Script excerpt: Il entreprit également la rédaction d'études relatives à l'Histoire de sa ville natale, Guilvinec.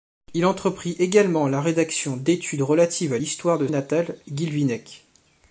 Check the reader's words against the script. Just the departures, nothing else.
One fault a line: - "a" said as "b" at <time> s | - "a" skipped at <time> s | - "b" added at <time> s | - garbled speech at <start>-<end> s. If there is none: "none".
- "sa ville" skipped at 3.7 s